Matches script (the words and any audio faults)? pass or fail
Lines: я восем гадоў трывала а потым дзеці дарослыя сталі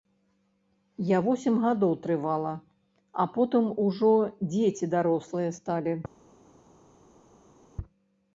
fail